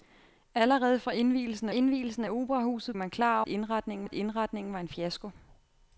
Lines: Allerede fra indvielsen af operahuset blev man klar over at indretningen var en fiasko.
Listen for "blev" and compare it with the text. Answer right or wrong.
wrong